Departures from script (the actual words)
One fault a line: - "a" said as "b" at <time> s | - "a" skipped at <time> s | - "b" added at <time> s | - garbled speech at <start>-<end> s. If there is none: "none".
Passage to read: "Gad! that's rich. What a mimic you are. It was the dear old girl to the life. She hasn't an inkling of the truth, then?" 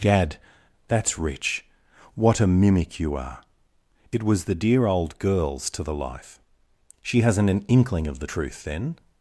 - "girl" said as "girls" at 5.2 s